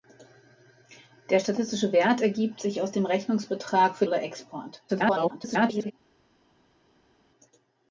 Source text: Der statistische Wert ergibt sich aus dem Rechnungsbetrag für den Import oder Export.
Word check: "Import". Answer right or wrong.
wrong